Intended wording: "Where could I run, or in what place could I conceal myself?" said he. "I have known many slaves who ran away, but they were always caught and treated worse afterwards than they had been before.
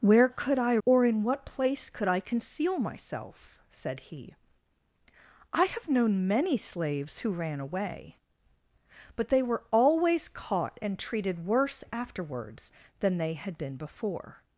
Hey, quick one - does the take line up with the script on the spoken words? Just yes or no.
no